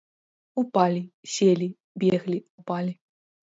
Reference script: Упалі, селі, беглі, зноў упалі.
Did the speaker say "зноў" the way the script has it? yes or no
no